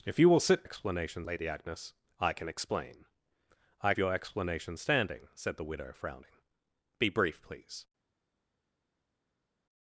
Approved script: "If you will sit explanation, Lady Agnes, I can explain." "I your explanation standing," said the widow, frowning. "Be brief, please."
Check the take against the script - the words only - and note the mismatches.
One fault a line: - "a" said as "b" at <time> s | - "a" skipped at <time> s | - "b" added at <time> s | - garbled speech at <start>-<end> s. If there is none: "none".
none